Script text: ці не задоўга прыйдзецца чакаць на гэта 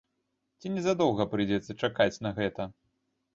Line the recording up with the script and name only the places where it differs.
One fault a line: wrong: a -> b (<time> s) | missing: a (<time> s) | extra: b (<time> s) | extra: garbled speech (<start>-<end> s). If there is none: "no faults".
no faults